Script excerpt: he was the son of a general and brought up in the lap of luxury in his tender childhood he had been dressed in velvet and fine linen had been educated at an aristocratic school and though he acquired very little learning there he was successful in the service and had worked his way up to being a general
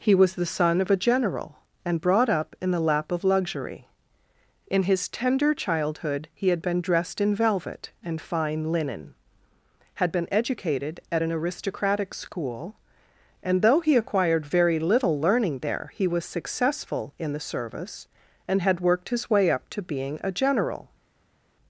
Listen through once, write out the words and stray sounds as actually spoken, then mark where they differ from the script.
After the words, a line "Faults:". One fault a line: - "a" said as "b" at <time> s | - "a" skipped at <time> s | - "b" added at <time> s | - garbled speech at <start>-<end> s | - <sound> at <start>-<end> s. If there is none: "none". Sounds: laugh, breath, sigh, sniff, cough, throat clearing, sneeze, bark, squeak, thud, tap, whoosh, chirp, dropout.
he was the son of a general and brought up in the lap of luxury in his tender childhood he had been dressed in velvet and fine linen had been educated at an aristocratic school and though he acquired very little learning there he was successful in the service and had worked his way up to being a general
Faults:
none